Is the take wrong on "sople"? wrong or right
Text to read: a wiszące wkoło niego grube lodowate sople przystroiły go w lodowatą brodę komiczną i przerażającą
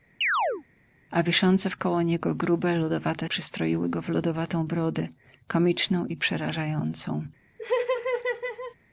wrong